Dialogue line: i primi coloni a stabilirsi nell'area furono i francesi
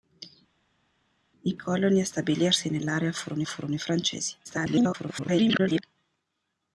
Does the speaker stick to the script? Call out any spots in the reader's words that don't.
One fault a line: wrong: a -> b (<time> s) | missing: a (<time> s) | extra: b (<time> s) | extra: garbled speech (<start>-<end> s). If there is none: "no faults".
missing: primi (1.5 s)
extra: furono (3.4 s)
extra: garbled speech (4.4-5.8 s)